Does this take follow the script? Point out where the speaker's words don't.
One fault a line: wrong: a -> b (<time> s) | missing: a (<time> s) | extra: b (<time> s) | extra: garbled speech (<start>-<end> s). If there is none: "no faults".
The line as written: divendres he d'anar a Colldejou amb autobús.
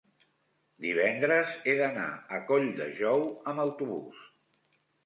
no faults